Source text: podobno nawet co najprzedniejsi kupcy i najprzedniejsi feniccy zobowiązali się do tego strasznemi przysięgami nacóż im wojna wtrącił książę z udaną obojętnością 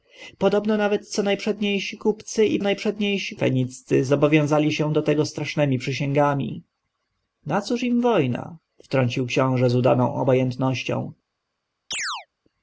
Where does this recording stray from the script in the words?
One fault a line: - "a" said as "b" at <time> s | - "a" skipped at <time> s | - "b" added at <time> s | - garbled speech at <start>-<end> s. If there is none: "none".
none